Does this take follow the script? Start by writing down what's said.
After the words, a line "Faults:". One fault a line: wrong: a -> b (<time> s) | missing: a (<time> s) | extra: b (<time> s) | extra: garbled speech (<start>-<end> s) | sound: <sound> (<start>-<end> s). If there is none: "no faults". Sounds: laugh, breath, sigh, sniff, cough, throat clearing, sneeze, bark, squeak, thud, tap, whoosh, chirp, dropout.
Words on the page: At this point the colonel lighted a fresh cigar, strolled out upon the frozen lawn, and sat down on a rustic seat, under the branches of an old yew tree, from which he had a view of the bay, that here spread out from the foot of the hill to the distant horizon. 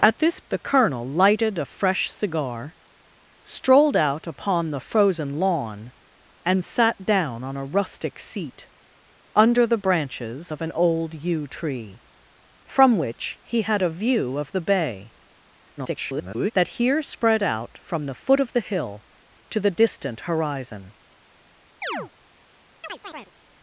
At this the colonel lighted a fresh cigar, strolled out upon the frozen lawn, and sat down on a rustic seat, under the branches of an old yew tree, from which he had a view of the bay, [garbled] that here spread out from the foot of the hill to the distant horizon.
Faults:
missing: point (0.4 s)
extra: garbled speech (15.8-16.5 s)
sound: chirp (21.8-22.1 s)
sound: chirp (22.8-23.3 s)